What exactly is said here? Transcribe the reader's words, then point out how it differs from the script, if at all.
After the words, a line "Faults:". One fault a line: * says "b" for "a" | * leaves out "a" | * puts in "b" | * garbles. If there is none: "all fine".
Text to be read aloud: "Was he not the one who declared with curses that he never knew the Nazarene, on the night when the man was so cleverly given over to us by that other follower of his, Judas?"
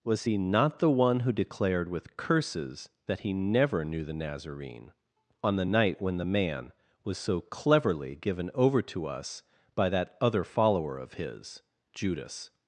"Was he not the one who declared with curses that he never knew the Nazarene, on the night when the man was so cleverly given over to us by that other follower of his, Judas?"
Faults:
all fine